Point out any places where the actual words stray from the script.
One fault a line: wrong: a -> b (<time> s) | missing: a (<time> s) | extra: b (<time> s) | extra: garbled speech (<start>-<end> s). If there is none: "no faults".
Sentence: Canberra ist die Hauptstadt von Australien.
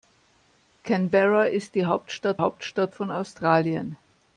extra: Hauptstadt (2.4 s)